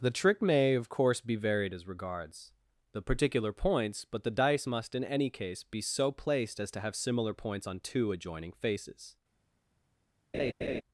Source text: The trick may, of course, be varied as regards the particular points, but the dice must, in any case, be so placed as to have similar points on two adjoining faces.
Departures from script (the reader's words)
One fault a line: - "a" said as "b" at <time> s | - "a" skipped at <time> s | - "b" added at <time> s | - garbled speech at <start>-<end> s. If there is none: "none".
none